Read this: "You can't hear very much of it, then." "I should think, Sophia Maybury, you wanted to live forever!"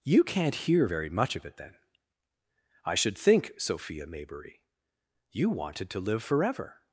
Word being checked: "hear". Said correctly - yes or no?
yes